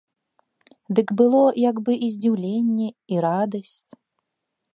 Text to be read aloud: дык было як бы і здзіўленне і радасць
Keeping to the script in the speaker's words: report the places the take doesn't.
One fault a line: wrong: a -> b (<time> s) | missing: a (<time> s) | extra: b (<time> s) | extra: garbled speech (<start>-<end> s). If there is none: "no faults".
no faults